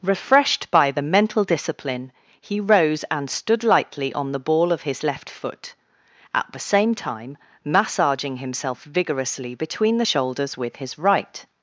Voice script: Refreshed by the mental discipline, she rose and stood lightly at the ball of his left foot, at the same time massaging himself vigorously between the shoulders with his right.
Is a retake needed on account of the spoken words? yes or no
yes